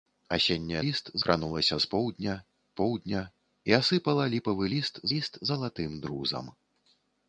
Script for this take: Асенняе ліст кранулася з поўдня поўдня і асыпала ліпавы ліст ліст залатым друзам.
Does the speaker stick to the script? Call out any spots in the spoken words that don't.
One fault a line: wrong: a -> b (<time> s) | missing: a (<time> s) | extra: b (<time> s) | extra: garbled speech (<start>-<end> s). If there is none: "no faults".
no faults